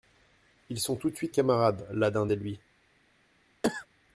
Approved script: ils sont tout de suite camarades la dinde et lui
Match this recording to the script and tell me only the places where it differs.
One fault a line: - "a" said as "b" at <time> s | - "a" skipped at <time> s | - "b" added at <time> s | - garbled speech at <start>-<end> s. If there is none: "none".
none